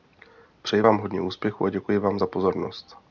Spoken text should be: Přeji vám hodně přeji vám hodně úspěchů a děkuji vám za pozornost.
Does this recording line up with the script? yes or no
no